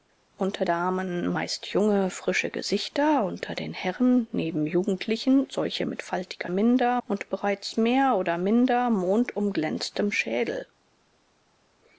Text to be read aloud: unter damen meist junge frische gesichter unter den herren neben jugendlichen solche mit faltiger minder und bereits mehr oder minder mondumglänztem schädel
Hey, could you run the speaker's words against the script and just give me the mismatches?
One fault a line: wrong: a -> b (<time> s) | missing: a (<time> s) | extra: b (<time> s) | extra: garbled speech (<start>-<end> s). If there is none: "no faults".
no faults